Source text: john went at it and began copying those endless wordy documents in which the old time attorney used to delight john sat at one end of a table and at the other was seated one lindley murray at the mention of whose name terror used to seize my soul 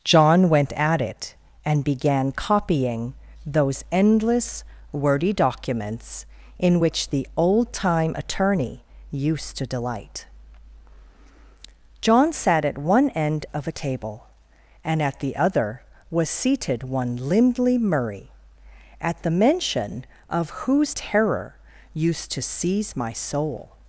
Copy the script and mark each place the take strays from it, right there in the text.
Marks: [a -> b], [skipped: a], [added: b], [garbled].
john went at it and began copying those endless wordy documents in which the old time attorney used to delight john sat at one end of a table and at the other was seated one lindley murray at the mention of whose [skipped: name] terror used to seize my soul